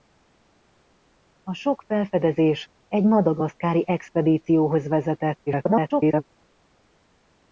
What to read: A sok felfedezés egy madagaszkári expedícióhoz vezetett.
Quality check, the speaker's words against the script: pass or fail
fail